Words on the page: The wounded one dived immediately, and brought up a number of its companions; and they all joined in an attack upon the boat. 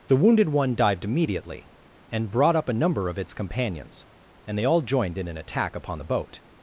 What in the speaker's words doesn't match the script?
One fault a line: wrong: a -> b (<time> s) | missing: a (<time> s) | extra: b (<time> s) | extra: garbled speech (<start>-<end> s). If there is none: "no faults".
no faults